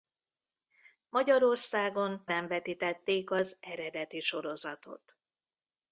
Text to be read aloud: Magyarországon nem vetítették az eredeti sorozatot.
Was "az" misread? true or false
false